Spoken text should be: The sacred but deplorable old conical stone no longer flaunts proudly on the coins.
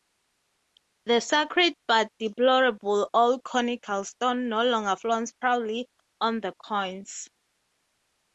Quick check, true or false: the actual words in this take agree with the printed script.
true